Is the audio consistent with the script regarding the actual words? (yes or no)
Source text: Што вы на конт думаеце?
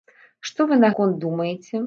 yes